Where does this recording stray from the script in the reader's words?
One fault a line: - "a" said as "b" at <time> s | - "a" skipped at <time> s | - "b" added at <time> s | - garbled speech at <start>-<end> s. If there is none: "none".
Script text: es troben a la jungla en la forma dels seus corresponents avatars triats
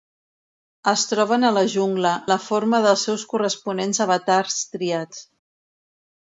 - "en" skipped at 2.1 s